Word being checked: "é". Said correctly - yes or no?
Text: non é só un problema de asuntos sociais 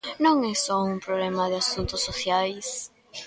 yes